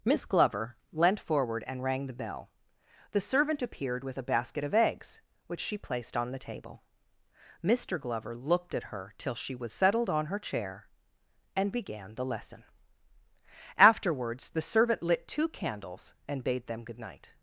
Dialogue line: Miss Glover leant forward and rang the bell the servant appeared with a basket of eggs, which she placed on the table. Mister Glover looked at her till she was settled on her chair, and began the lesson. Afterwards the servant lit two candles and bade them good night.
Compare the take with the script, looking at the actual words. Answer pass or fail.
pass